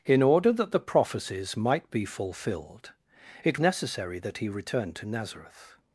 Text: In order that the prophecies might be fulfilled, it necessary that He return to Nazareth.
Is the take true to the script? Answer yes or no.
yes